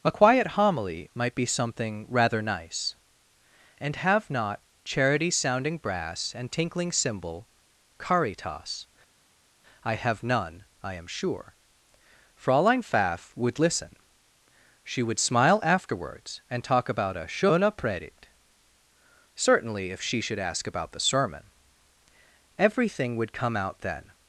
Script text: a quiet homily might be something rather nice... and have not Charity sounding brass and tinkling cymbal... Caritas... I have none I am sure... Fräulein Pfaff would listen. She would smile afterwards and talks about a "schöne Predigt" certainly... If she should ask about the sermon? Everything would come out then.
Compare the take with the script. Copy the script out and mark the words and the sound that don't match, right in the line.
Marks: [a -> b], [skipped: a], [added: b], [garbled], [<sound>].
a quiet homily might be something rather nice... and have not Charity sounding brass and tinkling cymbal... Caritas... I have none I am sure... Fräulein Pfaff would listen. She would smile afterwards and [talks -> talk] about a "schöne Predigt" certainly... If she should ask about the sermon? Everything would come out then.